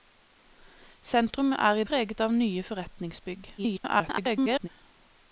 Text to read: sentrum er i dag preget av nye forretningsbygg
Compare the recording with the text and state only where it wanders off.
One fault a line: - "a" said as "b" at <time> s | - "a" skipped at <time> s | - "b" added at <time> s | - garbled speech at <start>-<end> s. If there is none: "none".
- "dag" skipped at 1.9 s
- garbled speech at 3.6-4.7 s